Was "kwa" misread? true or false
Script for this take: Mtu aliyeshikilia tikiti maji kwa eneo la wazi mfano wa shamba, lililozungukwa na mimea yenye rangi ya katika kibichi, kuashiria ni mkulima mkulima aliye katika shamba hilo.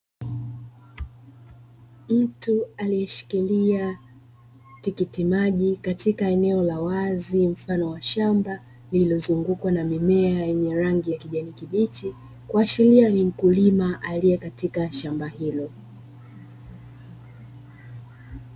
true